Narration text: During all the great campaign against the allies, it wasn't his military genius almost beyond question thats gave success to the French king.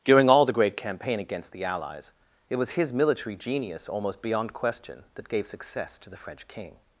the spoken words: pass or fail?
fail